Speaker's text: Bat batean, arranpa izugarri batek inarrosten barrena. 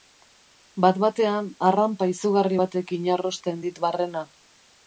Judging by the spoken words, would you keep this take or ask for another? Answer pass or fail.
fail